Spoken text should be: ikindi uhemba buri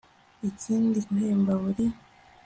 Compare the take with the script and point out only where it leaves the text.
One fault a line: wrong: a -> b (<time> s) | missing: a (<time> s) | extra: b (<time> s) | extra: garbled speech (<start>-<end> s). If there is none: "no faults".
no faults